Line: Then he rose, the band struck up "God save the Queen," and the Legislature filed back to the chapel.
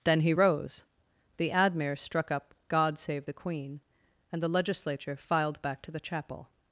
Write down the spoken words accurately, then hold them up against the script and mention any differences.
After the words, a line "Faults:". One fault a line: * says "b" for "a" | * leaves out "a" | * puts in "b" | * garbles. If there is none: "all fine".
Then he rose, the admir struck up "God save the Queen," and the Legislature filed back to the chapel.
Faults:
* says "admir" for "band"